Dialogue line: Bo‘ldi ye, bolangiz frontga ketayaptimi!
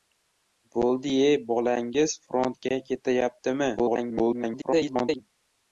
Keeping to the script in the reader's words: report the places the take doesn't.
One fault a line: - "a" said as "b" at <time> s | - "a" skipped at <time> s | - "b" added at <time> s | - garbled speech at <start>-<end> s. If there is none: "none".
- garbled speech at 3.8-5.2 s